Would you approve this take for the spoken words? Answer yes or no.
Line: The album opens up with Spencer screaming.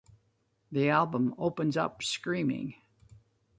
no